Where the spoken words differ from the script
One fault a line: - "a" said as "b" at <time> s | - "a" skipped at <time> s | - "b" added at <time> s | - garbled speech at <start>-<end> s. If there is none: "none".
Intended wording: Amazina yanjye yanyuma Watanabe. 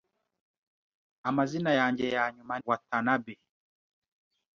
none